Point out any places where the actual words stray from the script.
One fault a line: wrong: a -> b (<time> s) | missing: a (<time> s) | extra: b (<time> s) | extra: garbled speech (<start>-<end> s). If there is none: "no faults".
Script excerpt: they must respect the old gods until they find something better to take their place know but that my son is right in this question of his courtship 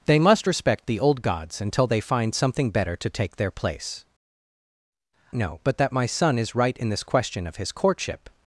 no faults